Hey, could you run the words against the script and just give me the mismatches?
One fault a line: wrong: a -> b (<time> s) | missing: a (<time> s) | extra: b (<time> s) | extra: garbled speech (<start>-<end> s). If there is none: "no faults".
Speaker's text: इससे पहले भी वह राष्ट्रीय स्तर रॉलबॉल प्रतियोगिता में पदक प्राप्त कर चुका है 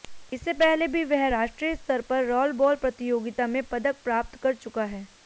extra: पर (2.0 s)